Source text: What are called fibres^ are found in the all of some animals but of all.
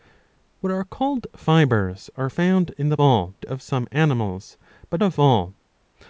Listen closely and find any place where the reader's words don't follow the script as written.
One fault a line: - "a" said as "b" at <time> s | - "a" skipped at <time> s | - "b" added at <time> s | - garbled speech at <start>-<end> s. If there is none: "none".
none